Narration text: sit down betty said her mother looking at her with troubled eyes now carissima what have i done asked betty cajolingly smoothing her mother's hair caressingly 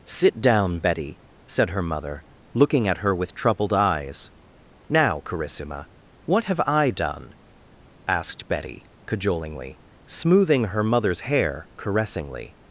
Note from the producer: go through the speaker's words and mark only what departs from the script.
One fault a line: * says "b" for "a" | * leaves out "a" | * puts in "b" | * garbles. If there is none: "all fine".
all fine